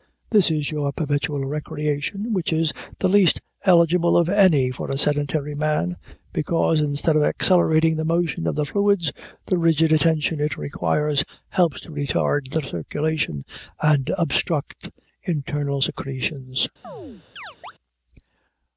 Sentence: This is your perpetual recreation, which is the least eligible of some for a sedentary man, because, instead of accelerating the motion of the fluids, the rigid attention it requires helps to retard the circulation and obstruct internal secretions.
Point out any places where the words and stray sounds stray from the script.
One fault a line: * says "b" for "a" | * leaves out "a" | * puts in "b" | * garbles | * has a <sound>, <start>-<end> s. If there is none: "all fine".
* says "any" for "some"
* has a chirp, 16.8-17.7 s